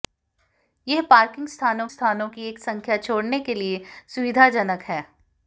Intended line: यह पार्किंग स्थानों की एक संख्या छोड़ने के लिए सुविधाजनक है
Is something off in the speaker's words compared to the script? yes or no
yes